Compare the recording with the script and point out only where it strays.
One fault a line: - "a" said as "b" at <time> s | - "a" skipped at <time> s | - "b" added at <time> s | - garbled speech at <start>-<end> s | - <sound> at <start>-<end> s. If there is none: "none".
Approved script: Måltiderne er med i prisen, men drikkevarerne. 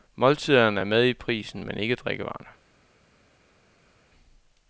- "ikke" added at 1.8 s